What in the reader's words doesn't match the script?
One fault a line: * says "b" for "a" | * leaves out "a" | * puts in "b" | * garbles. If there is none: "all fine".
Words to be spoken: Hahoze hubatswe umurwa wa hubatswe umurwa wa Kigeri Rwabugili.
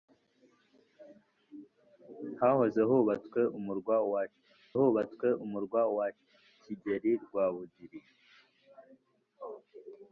all fine